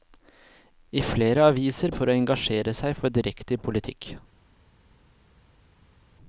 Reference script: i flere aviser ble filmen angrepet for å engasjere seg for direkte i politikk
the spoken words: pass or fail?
fail